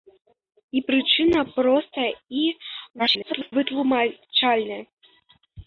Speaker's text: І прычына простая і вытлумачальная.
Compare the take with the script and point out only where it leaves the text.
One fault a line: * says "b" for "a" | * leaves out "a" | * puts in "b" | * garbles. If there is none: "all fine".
* garbles